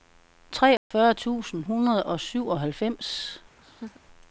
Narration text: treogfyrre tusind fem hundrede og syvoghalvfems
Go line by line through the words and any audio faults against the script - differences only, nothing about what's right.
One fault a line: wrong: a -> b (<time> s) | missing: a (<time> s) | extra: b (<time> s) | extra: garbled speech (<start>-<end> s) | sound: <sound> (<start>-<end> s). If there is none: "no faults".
sound: dropout (0.8-0.9 s)
missing: fem (1.6 s)
sound: laugh (3.6-4.0 s)